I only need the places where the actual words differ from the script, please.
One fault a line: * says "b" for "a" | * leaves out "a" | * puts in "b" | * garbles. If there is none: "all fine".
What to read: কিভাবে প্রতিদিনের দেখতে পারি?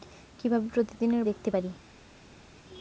all fine